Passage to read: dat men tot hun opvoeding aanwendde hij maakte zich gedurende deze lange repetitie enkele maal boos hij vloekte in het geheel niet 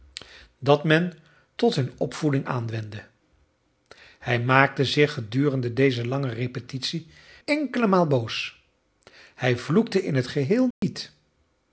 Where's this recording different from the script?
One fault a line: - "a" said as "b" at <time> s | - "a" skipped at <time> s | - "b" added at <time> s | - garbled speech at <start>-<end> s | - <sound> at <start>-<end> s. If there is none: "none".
- dropout at 10.7-10.8 s